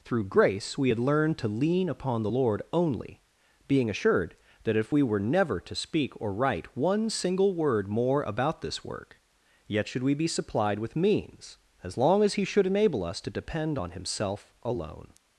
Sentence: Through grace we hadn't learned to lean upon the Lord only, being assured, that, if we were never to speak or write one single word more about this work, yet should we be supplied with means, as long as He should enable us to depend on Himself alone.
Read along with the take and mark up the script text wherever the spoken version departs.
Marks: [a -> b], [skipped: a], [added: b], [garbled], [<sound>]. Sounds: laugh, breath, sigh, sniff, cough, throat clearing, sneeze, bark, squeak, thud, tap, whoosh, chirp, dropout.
Through grace we [hadn't -> had] learned to lean upon the Lord only, being assured, that, if we were never to speak or write one single word more about this work, yet should we be supplied with means, as long as He should enable us to depend on Himself alone.